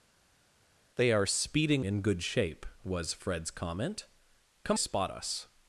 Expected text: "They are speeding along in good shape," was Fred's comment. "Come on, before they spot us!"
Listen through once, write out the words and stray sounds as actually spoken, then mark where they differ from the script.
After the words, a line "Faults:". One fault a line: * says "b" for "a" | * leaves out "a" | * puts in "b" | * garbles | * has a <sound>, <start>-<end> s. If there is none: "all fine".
"They are speeding in good shape," was Fred's comment. "Come spot us!"
Faults:
* leaves out "along"
* leaves out "on before they"